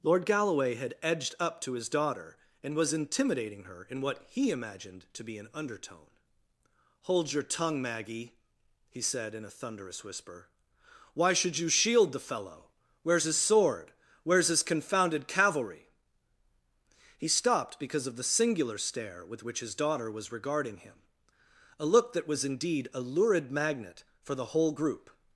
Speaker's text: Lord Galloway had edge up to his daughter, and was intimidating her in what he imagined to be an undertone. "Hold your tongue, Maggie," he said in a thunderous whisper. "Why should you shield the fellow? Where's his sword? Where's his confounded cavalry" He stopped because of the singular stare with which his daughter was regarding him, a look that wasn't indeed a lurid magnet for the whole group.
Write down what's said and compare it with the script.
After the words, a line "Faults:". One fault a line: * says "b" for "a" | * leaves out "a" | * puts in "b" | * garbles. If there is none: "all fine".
Lord Galloway had edged up to his daughter, and was intimidating her in what he imagined to be an undertone. "Hold your tongue, Maggie," he said in a thunderous whisper. "Why should you shield the fellow? Where's his sword? Where's his confounded cavalry" He stopped because of the singular stare with which his daughter was regarding him, a look that was indeed a lurid magnet for the whole group.
Faults:
* says "edged" for "edge"
* says "was" for "wasn't"